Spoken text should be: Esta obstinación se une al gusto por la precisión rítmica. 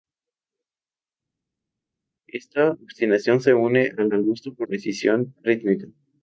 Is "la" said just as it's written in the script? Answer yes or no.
no